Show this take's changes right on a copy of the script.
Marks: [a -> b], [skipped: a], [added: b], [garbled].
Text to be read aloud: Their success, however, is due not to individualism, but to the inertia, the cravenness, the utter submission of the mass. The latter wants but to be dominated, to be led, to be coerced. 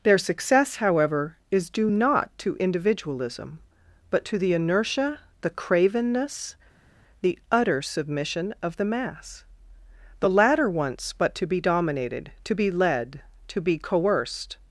Their success, however, is due not to individualism, but to the inertia, the cravenness, the utter submission of the mass. The latter wants but to be dominated, to be led, to be coerced.